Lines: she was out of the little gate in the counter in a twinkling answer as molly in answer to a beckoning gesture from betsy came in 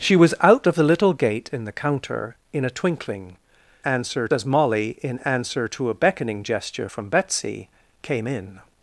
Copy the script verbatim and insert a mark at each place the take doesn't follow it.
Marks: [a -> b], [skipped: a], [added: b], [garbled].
she was out of the little gate in the counter in a twinkling answer as molly in answer to a beckoning gesture from betsy came in